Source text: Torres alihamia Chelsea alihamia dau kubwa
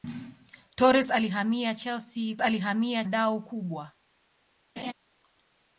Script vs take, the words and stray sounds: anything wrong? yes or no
yes